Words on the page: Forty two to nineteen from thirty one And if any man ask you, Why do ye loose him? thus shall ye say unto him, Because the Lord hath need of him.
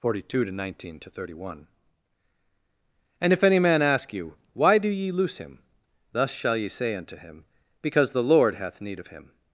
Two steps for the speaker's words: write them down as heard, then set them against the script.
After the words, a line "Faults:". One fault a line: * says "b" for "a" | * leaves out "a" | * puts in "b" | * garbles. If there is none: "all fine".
Forty two to nineteen to thirty one And if any man ask you, Why do ye loose him? thus shall ye say unto him, Because the Lord hath need of him.
Faults:
* says "to" for "from"